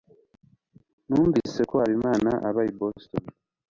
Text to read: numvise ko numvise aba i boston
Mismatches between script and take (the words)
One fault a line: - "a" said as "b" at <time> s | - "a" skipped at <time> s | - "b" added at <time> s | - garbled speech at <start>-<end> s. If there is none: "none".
- "numvise" said as "habimana" at 1.8 s